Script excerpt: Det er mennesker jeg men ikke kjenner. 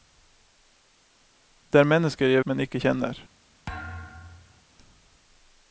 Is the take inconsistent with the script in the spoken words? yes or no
no